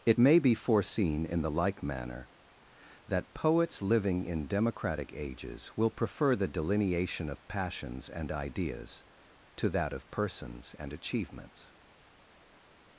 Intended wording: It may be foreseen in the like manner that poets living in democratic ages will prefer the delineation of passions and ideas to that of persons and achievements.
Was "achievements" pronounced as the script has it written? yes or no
yes